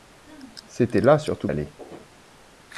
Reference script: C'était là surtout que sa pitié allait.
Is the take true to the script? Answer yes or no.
no